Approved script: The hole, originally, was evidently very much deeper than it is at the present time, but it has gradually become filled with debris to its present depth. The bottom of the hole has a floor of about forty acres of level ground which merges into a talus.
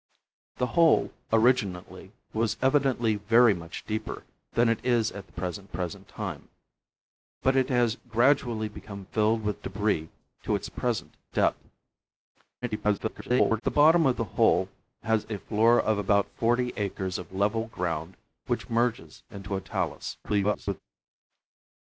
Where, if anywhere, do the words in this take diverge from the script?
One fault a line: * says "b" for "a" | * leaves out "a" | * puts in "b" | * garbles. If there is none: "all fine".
* puts in "present"
* garbles
* garbles